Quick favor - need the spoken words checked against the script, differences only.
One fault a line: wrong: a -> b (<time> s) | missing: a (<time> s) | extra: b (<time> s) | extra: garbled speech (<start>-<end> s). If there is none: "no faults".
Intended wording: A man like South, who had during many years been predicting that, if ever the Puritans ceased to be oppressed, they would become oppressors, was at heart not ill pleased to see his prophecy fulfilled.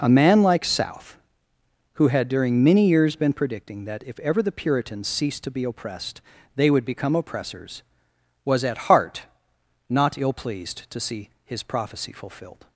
no faults